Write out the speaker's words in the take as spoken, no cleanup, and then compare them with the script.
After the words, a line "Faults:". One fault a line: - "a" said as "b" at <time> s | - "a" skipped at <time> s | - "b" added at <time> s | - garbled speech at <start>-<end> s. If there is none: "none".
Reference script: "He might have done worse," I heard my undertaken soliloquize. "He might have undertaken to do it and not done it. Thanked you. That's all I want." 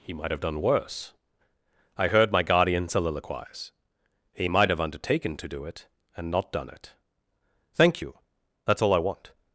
"He might have done worse," I heard my guardian soliloquize. "He might have undertaken to do it and not done it. Thank you. That's all I want."
Faults:
- "undertaken" said as "guardian" at 2.4 s
- "Thanked" said as "Thank" at 7.7 s